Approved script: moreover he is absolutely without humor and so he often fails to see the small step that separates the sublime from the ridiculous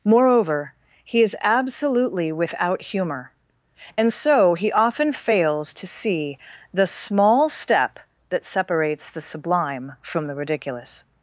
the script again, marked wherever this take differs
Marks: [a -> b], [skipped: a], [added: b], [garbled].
moreover he is absolutely without humor and so he often fails to see the small step that separates the sublime from the ridiculous